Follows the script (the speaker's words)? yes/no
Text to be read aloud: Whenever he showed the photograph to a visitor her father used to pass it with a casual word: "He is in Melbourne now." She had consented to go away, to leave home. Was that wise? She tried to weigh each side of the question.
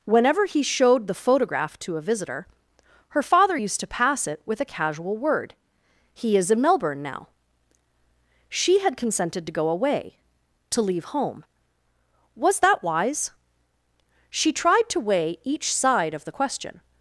yes